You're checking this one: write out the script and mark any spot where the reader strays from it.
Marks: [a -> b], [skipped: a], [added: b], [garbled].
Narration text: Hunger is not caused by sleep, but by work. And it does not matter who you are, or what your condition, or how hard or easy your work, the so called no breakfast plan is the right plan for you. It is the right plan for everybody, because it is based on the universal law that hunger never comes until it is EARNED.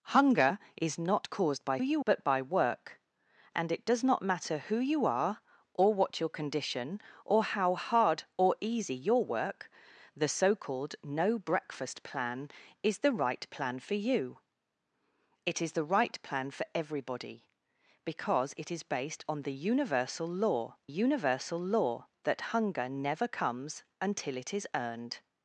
Hunger is not caused by [sleep, -> you] but by work. And it does not matter who you are, or what your condition, or how hard or easy your work, the so called no breakfast plan is the right plan for you. It is the right plan for everybody, because it is based on the universal law [added: universal law] that hunger never comes until it is EARNED.